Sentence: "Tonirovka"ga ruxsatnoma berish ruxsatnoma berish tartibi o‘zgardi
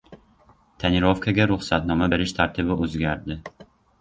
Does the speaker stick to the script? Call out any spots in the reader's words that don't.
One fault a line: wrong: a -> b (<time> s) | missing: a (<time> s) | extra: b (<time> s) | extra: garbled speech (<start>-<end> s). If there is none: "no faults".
missing: ruxsatnoma berish (2.4 s)